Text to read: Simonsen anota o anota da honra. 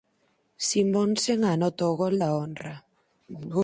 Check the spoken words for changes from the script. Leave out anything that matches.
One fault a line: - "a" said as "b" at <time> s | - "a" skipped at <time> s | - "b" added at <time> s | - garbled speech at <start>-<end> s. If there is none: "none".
- "anota" said as "gol" at 2.0 s